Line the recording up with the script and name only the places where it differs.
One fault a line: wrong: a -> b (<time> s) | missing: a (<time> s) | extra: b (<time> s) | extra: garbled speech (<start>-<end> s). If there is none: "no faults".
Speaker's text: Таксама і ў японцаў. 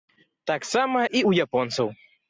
no faults